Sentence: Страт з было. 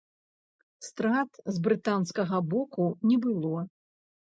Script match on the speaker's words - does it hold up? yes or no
no